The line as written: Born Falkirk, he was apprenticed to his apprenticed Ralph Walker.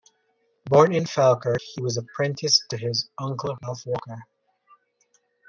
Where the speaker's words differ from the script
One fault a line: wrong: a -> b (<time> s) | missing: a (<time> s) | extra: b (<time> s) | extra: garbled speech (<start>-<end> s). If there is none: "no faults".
extra: in (0.9 s)
wrong: apprenticed -> uncle (3.2 s)